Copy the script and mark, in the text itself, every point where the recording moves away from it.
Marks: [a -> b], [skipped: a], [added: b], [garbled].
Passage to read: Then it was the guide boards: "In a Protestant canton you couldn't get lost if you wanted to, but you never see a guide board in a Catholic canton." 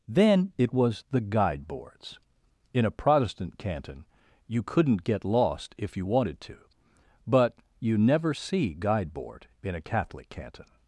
Then it was the guide boards: "In a Protestant canton you couldn't get lost if you wanted to, but you never see [skipped: a] guide board in a Catholic canton."